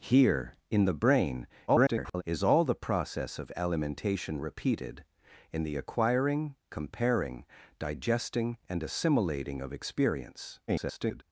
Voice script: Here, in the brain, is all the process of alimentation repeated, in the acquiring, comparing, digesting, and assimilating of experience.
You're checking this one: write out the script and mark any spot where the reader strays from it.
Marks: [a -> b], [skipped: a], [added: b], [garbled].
Here, in the brain, [garbled] is all the process of alimentation repeated, in the acquiring, comparing, digesting, and assimilating of experience. [garbled]